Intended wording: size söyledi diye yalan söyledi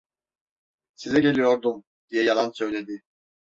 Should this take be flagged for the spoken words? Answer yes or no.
yes